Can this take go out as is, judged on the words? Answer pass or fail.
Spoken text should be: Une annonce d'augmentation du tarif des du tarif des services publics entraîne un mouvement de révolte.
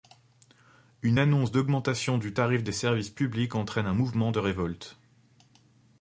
fail